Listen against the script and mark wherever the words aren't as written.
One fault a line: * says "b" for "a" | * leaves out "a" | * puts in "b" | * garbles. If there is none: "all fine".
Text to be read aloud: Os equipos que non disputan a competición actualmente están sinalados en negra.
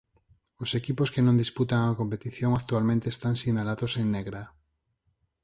all fine